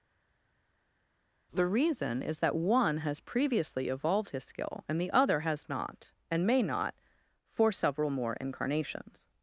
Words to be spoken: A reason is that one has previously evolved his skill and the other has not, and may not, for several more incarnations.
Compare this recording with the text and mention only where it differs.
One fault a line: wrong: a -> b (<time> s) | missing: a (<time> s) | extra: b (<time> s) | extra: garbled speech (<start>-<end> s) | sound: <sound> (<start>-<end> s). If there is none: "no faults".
wrong: A -> The (1.5 s)